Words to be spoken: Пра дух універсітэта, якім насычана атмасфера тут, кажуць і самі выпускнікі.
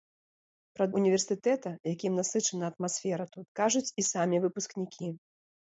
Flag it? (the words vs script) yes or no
yes